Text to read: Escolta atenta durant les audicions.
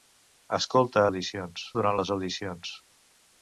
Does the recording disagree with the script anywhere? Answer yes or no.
yes